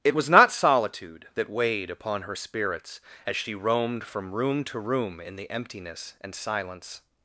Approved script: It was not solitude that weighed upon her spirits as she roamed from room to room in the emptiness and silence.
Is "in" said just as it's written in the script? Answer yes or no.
yes